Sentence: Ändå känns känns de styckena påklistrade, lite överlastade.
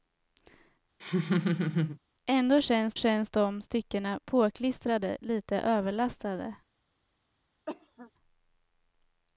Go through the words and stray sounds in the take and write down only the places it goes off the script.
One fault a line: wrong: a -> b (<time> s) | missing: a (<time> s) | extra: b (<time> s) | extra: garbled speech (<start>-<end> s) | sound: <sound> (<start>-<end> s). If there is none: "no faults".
sound: laugh (1.0-2.0 s)
sound: cough (7.7-8.1 s)